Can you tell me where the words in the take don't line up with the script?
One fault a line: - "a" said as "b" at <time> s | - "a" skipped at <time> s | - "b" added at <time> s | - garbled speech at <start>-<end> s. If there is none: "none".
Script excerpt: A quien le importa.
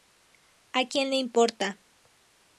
none